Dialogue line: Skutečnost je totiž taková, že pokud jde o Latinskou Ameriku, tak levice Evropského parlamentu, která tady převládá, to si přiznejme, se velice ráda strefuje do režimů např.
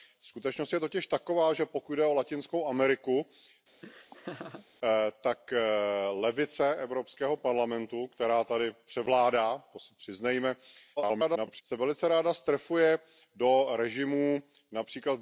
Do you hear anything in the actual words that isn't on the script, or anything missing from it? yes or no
yes